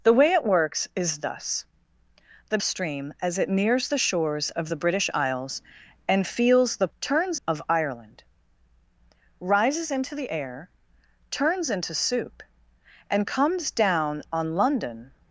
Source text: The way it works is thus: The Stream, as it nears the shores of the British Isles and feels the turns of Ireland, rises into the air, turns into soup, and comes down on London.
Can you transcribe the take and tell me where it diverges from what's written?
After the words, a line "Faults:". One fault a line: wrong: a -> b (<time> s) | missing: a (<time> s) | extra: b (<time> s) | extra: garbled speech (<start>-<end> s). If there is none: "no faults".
The way it works is thus: The Stream, as it nears the shores of the British Isles and feels the turns of Ireland, rises into the air, turns into soup, and comes down on London.
Faults:
no faults